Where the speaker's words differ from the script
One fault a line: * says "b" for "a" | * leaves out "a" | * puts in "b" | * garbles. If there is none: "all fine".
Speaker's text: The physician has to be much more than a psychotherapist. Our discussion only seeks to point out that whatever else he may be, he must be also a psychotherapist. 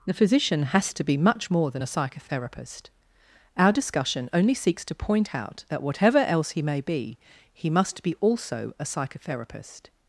all fine